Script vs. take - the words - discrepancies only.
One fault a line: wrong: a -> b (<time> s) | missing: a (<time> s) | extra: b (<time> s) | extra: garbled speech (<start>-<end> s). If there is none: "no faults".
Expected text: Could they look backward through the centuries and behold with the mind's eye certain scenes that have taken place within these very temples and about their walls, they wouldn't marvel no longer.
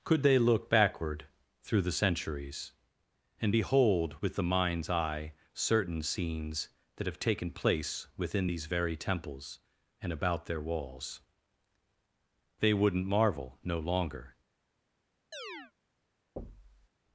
no faults